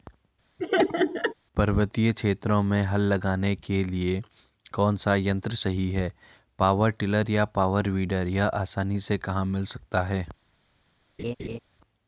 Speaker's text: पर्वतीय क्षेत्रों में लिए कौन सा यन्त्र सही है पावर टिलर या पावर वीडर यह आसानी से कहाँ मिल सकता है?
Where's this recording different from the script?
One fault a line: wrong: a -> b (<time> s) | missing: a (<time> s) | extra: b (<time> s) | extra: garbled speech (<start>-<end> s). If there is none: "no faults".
extra: हल लगाने के (2.8 s)